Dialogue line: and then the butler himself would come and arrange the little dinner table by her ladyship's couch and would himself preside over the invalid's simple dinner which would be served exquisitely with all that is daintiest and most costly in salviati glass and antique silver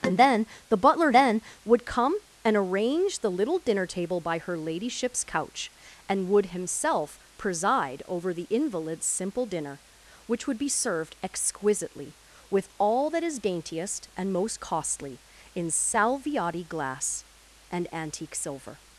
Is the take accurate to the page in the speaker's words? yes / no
no